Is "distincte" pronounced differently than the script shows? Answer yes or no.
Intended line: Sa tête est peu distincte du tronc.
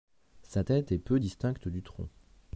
no